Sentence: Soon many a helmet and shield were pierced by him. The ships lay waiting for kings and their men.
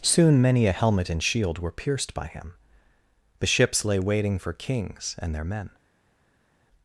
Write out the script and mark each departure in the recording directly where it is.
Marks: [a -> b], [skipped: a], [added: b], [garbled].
Soon many a helmet and shield were pierced by him. The ships lay waiting for kings and their men.